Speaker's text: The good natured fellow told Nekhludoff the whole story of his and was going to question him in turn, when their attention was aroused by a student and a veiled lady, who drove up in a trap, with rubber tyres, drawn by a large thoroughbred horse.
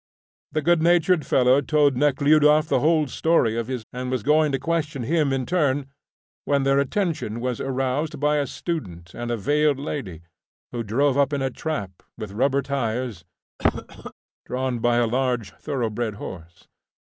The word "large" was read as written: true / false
true